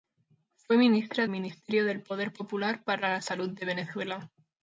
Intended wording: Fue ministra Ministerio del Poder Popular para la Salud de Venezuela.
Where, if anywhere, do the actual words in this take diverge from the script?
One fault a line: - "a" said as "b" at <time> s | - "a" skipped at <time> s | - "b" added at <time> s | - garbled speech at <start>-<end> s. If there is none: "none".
none